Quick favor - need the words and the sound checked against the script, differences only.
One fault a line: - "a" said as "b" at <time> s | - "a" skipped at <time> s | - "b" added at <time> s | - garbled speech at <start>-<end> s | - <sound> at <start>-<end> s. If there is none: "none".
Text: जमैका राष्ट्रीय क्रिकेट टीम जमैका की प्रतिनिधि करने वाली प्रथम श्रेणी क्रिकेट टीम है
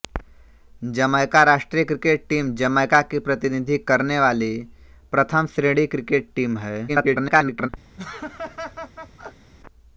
- garbled speech at 6.9-7.7 s
- laugh at 8.0-9.5 s